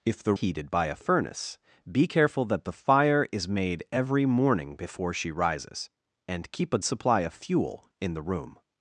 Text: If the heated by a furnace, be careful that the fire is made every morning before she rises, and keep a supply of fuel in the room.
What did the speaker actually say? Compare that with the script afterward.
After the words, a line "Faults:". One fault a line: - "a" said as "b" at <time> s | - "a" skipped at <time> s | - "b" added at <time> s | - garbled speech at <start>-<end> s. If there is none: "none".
If the heated by a furnace, be careful that the fire is made every morning before she rises, and keep a supply of fuel in the room.
Faults:
none